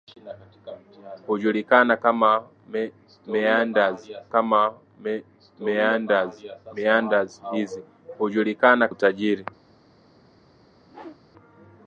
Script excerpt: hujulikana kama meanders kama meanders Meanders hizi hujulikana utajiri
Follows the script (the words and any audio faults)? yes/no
no